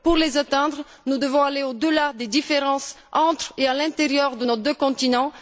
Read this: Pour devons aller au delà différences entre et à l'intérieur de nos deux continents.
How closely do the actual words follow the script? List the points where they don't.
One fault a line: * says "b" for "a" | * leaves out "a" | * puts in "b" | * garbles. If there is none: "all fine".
* puts in "les atteindre nous"
* puts in "des"